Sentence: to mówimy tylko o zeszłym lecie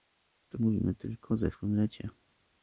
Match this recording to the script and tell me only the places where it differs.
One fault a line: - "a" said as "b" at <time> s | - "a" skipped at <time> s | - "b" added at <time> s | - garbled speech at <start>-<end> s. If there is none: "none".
none